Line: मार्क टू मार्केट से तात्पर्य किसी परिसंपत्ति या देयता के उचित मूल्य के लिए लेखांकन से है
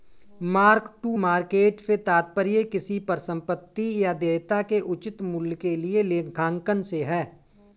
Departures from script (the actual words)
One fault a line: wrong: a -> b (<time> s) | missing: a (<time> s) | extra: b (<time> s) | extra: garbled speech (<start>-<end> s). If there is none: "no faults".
no faults